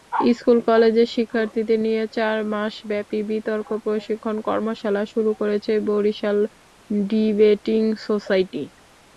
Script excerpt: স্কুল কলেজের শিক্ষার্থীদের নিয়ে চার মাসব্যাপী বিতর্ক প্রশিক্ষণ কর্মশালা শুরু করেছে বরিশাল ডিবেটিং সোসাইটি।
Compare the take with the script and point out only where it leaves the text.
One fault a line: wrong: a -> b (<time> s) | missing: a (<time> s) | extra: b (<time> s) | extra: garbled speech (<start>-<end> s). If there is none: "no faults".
no faults